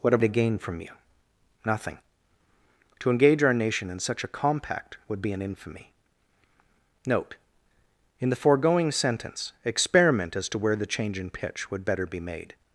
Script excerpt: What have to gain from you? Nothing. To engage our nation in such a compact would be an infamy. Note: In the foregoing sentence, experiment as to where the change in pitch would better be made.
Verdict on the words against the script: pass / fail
pass